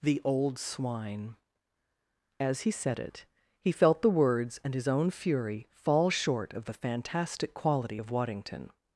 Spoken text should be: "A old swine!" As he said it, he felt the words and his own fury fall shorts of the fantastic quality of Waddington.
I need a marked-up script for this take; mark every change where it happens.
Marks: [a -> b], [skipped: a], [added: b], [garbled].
["A -> The] old swine!" As he said it, he felt the words and his own fury fall [shorts -> short] of the fantastic quality of Waddington.